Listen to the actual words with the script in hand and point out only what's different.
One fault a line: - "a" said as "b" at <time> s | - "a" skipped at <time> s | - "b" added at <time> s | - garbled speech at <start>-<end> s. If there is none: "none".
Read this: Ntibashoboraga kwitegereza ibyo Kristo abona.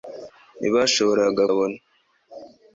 - "kwitegereza ibyo Kristo" skipped at 1.4 s